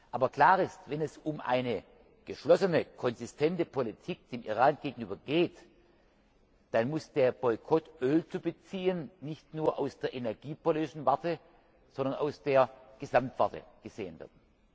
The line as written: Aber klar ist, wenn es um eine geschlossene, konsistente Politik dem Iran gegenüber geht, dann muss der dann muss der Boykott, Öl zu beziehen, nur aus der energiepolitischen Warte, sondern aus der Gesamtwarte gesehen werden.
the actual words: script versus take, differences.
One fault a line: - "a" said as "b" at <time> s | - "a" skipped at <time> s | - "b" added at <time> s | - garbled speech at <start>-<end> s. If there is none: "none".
- "dann muss der" skipped at 7.3 s
- "nicht" added at 9.2 s